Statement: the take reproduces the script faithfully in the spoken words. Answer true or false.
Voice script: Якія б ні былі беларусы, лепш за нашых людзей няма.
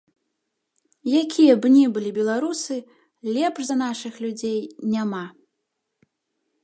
true